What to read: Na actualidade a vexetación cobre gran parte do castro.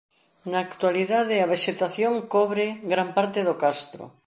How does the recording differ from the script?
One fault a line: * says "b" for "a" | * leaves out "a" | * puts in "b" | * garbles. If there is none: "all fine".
all fine